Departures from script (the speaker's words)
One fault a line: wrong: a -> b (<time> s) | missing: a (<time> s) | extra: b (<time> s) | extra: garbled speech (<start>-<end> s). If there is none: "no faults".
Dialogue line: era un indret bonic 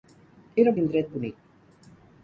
no faults